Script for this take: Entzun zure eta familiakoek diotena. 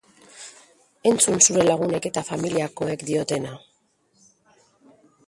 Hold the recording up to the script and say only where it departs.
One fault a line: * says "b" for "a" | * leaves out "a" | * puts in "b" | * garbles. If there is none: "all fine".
* puts in "lagunek"